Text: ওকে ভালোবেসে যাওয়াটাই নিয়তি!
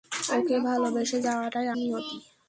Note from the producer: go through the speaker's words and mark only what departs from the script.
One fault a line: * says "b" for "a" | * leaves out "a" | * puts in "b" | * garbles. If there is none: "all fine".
all fine